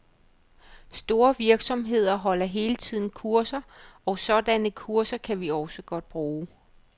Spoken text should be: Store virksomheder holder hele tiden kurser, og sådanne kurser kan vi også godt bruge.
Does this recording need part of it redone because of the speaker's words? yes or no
no